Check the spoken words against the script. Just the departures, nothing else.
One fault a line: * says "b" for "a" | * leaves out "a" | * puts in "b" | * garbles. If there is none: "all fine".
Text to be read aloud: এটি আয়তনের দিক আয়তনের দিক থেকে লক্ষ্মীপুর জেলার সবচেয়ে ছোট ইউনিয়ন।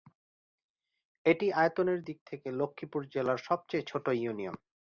* leaves out "আয়তনের দিক"